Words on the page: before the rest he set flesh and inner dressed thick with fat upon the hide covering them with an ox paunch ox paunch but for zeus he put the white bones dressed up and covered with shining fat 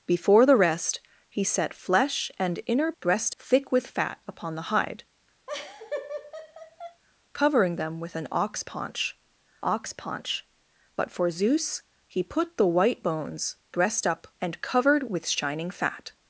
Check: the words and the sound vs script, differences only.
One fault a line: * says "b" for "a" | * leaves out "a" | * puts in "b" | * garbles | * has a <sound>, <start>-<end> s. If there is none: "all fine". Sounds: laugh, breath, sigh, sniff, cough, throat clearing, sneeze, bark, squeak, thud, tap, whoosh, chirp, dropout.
* has a laugh, 5.5-7.0 s